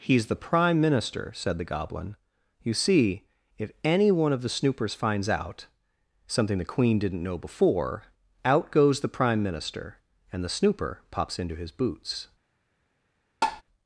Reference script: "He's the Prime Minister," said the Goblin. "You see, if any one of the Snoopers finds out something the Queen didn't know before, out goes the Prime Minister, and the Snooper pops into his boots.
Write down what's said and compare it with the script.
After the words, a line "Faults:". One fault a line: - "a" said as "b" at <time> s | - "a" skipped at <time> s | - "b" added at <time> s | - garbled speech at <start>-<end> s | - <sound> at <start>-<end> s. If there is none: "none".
"He's the Prime Minister," said the Goblin. "You see, if any one of the Snoopers finds out something the Queen didn't know before, out goes the Prime Minister, and the Snooper pops into his boots.
Faults:
- tap at 13.4-13.6 s